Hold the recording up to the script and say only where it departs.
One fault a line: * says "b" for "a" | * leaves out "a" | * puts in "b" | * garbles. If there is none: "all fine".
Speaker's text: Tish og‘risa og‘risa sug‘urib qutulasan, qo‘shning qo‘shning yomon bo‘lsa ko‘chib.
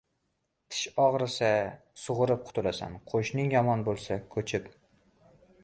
* leaves out "og‘risa"
* leaves out "qo‘shning"